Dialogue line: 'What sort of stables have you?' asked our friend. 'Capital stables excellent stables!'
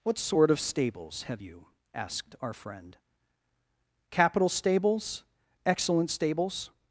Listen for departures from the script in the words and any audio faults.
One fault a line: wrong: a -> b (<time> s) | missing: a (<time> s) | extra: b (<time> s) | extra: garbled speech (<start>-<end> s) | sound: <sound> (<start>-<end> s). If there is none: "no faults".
no faults